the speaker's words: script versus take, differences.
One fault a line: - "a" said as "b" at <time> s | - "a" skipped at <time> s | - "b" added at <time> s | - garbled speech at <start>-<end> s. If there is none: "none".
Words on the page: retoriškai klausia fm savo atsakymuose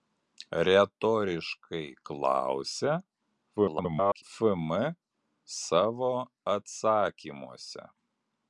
- garbled speech at 3.6-4.2 s